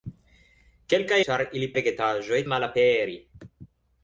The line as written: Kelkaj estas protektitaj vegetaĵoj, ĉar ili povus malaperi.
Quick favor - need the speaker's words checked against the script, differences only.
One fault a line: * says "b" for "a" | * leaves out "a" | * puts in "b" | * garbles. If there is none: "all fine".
* leaves out "estas protektitaj vegetaĵoj"
* says "vegetaĵoj" for "povus"